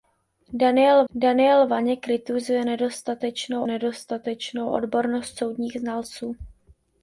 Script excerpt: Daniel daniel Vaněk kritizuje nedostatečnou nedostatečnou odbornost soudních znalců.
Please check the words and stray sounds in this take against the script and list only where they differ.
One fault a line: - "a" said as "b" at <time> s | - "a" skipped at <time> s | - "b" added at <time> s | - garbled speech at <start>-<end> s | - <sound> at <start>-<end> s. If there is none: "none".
none